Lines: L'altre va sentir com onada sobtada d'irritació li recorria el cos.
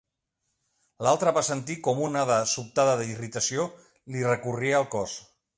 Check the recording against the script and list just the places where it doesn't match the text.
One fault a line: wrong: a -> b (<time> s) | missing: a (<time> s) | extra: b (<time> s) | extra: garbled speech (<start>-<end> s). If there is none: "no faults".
no faults